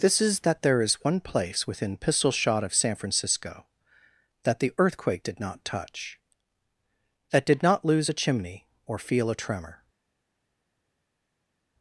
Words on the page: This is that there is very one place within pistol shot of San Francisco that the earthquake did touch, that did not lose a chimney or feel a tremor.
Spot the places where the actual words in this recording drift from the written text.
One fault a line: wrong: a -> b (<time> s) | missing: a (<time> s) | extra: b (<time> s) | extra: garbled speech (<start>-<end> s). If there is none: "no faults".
missing: very (1.0 s)
extra: not (5.4 s)